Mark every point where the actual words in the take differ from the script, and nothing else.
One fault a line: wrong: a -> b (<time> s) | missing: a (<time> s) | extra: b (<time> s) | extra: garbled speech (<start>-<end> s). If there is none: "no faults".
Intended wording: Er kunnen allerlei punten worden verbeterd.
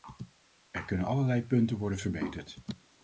no faults